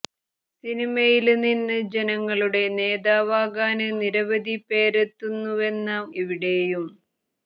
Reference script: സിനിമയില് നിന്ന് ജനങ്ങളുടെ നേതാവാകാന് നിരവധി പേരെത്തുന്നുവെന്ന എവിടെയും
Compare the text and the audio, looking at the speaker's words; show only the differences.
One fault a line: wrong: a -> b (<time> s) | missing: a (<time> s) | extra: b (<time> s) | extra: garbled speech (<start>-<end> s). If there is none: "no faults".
no faults